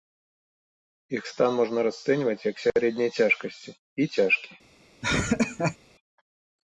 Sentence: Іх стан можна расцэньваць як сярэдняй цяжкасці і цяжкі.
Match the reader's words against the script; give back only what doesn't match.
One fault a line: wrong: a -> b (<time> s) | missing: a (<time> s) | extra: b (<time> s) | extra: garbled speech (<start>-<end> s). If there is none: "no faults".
no faults